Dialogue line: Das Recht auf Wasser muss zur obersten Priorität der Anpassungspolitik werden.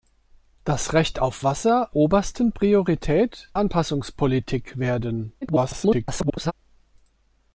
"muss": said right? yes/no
no